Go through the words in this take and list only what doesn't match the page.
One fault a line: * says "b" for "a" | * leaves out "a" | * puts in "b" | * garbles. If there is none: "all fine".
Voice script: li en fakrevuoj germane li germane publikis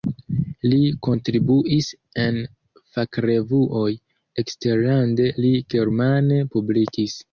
* puts in "kontribuis"
* says "eksterlande" for "germane"